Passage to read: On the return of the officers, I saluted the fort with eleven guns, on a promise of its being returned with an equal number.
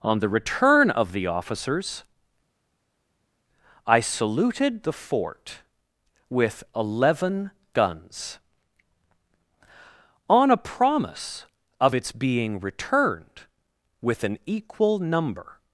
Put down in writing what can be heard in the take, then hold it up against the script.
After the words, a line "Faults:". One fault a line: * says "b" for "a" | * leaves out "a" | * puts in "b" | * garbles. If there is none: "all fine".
On the return of the officers, I saluted the fort with eleven guns, on a promise of its being returned with an equal number.
Faults:
all fine